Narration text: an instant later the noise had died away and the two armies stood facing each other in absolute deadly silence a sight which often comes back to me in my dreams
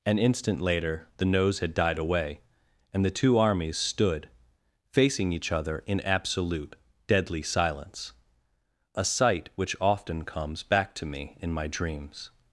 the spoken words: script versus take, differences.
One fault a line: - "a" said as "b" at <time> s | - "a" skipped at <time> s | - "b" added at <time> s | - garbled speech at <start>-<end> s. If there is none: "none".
- "noise" said as "nose" at 1.2 s